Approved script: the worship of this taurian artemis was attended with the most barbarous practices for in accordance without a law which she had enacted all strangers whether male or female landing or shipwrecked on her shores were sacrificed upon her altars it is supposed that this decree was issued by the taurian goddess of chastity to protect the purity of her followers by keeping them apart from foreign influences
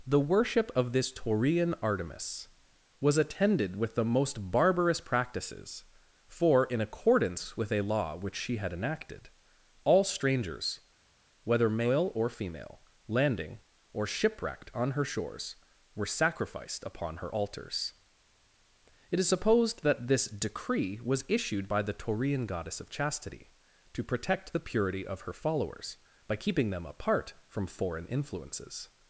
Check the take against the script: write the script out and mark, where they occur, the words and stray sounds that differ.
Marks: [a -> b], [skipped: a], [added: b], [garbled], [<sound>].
the worship of this taurian artemis was attended with the most barbarous practices for in accordance [without -> with] a law which she had enacted all strangers whether male or female landing or shipwrecked on her shores were sacrificed upon her altars it is supposed that this decree was issued by the taurian goddess of chastity to protect the purity of her followers by keeping them apart from foreign influences